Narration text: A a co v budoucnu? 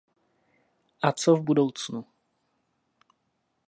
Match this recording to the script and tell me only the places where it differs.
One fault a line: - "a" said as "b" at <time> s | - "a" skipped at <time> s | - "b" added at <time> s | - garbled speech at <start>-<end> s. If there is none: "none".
- "a" skipped at 1.1 s